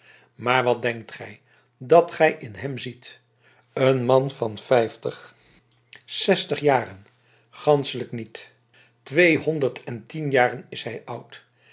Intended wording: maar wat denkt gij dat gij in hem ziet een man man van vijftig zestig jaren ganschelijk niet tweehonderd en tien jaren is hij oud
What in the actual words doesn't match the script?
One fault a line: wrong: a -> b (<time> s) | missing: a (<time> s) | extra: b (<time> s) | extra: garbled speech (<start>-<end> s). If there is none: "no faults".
missing: man (4.3 s)